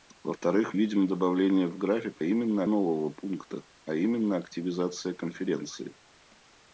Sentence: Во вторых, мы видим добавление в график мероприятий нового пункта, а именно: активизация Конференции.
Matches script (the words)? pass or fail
fail